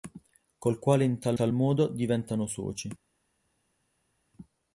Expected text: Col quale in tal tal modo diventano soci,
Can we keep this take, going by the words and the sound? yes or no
yes